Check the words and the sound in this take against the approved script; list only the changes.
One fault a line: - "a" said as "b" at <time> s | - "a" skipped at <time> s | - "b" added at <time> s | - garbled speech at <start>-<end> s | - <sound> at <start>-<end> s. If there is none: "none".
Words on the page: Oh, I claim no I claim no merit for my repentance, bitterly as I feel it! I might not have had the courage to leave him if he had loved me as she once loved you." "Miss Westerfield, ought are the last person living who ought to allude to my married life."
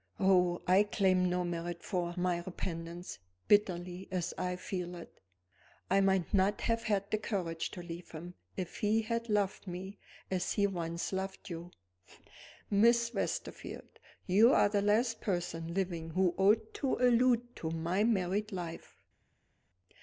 - "I claim no" skipped at 1.4 s
- "she" said as "he" at 10.5 s
- "ought" said as "you" at 14.2 s